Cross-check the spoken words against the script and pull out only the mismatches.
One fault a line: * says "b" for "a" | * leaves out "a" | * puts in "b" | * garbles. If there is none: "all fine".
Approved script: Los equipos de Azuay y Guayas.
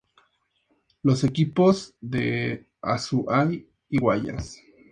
all fine